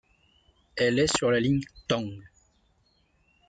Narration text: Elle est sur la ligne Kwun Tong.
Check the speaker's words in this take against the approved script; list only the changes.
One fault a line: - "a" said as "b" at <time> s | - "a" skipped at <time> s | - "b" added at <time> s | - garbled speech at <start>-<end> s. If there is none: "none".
- "Kwun" skipped at 1.6 s